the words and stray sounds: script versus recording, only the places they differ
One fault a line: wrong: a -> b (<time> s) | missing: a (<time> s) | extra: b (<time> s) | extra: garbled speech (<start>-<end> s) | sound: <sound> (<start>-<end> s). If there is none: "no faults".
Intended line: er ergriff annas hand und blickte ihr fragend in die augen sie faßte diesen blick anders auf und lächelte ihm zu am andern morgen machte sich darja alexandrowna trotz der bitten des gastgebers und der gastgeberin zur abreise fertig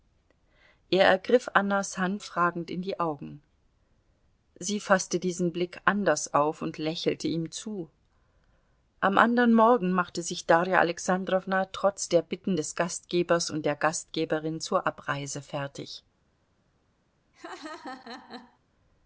missing: und blickte ihr (2.2 s)
sound: laugh (17.3-18.6 s)